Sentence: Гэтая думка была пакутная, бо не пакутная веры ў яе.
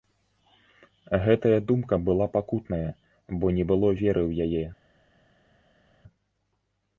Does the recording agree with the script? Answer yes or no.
no